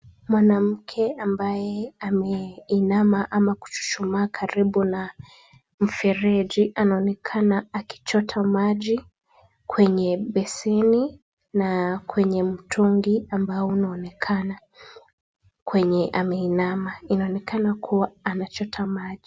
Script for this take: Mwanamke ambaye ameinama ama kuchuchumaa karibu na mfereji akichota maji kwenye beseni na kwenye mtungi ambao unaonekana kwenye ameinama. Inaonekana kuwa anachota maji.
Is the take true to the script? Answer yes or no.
no